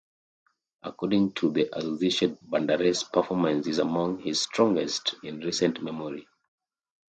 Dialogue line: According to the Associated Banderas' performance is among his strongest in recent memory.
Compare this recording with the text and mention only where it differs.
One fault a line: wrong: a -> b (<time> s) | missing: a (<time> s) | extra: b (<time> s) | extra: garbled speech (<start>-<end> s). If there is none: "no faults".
no faults